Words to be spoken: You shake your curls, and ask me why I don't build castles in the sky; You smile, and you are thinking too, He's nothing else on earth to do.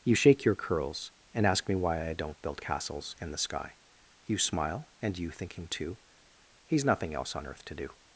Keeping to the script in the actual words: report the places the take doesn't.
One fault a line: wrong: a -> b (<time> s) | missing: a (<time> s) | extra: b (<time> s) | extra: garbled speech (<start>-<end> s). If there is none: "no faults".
missing: are (5.3 s)